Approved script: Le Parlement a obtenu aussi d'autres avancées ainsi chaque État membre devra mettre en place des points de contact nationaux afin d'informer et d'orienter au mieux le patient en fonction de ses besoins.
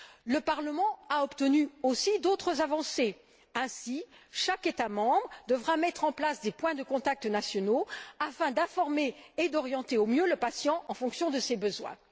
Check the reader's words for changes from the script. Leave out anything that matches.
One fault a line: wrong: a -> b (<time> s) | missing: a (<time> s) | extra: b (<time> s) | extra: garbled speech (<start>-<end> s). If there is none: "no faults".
no faults